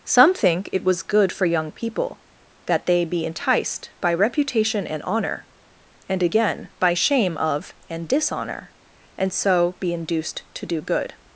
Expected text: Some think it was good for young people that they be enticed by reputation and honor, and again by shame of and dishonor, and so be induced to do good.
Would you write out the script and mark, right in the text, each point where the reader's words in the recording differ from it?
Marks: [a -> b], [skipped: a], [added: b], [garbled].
Some think it was good for young people that they be enticed by reputation and honor, and again by shame of and dishonor, and so be induced to do good.